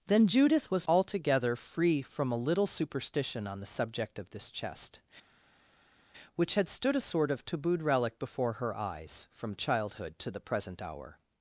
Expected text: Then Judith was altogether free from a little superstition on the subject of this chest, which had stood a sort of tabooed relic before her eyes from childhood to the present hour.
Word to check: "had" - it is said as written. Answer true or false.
true